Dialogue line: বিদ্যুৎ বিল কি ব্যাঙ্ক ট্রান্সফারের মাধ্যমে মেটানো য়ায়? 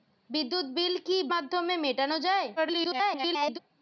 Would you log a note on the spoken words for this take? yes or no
yes